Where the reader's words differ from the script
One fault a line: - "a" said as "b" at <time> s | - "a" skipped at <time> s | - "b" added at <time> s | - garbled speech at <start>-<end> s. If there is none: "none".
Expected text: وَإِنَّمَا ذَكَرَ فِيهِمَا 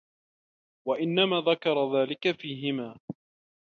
- "ذَلِكَ" added at 2.0 s